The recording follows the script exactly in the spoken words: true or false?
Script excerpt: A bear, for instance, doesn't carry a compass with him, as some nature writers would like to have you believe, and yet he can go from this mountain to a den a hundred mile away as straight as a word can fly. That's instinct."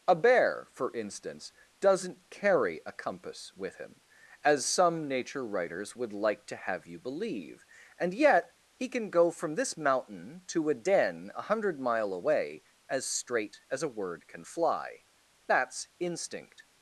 true